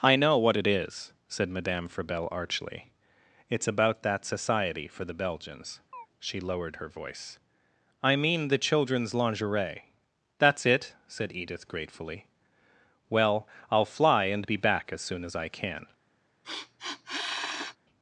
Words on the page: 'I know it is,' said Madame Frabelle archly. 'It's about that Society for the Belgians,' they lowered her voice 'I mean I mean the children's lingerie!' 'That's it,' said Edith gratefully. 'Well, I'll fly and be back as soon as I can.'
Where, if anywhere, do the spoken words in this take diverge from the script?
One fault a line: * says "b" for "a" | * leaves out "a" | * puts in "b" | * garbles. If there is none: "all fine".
* puts in "what"
* says "she" for "they"
* leaves out "I mean"